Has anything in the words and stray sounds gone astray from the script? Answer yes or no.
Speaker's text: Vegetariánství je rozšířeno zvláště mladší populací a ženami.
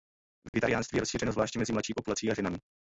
yes